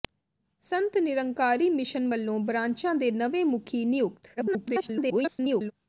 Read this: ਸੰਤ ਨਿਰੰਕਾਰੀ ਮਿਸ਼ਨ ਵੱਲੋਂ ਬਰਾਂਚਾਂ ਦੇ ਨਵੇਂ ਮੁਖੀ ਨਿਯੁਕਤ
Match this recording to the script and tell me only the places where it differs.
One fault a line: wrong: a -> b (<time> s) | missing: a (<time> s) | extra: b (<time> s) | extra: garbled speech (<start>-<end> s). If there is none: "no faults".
extra: garbled speech (4.4-5.7 s)